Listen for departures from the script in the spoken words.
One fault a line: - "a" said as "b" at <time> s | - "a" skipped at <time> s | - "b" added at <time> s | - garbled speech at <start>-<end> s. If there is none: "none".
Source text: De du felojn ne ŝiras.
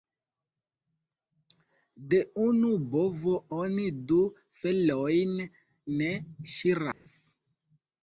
- "unu bovo oni" added at 2.5 s